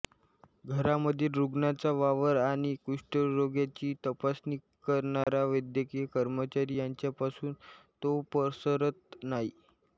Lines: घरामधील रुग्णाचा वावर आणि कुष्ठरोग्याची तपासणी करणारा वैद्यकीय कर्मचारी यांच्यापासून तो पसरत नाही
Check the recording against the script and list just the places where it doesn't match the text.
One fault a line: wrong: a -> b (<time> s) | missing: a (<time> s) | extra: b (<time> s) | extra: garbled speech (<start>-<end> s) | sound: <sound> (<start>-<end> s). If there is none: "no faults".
sound: dropout (5.2-5.3 s)